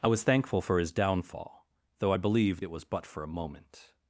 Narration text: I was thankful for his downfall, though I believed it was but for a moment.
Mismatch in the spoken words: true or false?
false